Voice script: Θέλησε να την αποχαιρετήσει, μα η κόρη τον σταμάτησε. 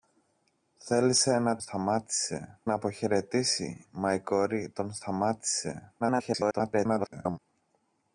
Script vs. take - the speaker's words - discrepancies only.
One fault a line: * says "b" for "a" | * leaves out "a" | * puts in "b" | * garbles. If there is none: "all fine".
* says "σταμάτησε" for "την"
* garbles